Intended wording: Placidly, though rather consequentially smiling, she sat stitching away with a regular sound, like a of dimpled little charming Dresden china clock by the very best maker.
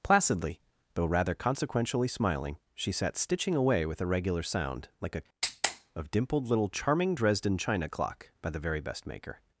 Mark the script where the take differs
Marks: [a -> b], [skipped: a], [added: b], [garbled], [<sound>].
Placidly, though rather consequentially smiling, she sat stitching away with a regular sound, like a of dimpled little charming Dresden china clock by the very best maker.